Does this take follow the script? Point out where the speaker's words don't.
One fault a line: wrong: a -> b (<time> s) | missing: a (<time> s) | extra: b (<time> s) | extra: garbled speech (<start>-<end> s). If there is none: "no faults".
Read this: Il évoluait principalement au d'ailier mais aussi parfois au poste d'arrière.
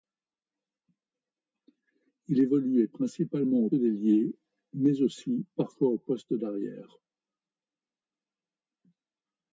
no faults